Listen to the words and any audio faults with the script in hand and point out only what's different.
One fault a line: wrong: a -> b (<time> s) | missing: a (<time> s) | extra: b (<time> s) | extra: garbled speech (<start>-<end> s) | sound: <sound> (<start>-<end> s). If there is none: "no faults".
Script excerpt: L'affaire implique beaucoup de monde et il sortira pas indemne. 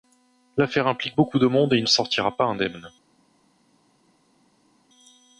no faults